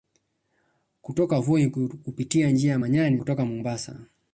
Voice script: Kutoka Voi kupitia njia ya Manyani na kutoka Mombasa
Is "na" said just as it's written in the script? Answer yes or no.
no